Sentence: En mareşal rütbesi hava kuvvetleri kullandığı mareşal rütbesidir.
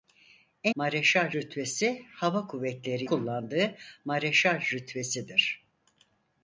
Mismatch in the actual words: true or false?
false